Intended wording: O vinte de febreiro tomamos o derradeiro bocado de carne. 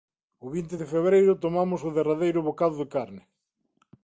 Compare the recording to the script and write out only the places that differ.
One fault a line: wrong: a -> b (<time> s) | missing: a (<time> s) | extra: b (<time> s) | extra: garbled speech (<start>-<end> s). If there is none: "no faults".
no faults